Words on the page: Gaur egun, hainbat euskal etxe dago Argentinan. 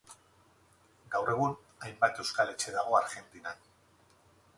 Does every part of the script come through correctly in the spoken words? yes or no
yes